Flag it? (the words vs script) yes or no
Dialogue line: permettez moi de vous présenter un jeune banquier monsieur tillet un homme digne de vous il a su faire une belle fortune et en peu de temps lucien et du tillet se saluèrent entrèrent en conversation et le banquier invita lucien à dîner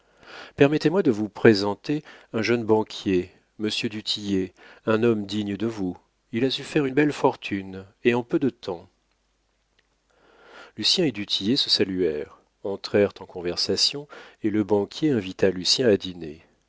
yes